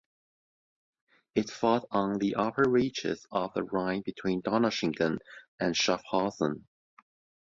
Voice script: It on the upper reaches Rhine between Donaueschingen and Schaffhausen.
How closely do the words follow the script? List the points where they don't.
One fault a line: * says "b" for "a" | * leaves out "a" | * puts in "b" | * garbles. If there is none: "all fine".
* puts in "fought"
* puts in "of the"